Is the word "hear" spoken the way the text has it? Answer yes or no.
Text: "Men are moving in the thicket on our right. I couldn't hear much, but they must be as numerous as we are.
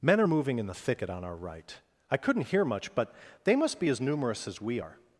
yes